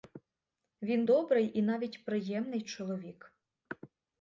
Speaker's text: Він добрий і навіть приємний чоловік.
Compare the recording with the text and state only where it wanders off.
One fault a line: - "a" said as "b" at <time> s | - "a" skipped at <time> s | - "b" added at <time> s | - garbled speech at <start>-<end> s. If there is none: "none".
none